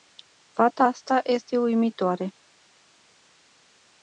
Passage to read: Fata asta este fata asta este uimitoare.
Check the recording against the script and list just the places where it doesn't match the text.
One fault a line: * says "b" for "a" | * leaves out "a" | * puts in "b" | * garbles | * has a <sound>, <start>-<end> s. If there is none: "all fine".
* leaves out "fata asta este"